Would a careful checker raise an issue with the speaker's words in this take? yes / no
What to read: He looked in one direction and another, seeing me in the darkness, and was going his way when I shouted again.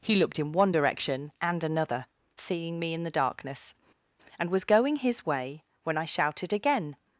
no